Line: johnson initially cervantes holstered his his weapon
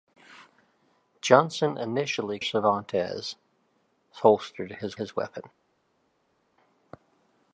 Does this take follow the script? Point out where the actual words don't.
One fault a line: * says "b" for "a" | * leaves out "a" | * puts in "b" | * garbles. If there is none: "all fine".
all fine